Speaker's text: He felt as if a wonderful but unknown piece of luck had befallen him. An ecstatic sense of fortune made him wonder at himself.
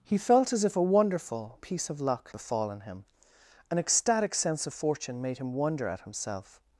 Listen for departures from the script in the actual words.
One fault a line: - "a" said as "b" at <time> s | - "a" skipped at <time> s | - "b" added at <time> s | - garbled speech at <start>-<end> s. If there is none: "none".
- "but unknown" skipped at 1.6 s
- "had" skipped at 2.3 s